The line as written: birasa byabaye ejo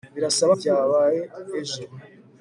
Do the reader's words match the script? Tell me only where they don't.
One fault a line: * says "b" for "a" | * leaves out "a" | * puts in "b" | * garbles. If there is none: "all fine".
all fine